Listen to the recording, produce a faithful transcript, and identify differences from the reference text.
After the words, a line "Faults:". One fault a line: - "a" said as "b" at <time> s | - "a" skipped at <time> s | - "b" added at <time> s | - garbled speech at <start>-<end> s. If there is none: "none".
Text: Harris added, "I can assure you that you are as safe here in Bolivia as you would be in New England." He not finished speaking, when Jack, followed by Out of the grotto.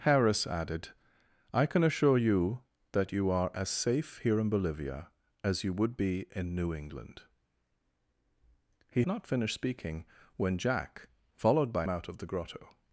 Harris added, "I can assure you that you are as safe here in Bolivia as you would be in New England." He not finished speaking, when Jack, followed by Out of the grotto.
Faults:
none